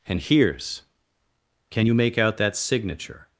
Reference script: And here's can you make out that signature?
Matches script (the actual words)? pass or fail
pass